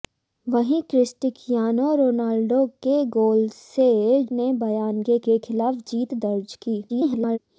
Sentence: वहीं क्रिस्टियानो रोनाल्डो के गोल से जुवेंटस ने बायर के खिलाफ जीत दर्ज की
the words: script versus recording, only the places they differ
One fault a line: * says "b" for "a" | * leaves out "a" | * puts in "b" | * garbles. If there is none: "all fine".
* leaves out "जुवेंटस"
* puts in "के"
* garbles